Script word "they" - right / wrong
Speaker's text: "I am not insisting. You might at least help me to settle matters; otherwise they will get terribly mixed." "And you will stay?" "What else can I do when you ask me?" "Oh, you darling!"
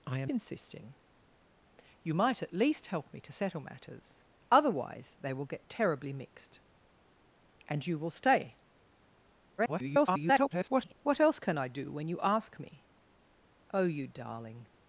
right